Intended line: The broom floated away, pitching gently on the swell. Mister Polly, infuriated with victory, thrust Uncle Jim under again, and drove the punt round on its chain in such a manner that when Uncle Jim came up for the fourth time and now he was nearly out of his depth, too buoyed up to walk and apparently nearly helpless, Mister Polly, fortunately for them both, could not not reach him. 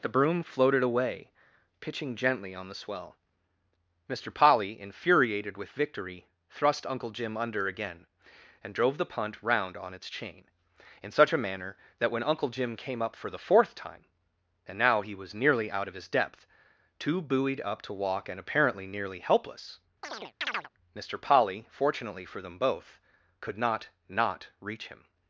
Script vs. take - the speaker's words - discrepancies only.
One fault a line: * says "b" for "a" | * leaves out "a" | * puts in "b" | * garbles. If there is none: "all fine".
all fine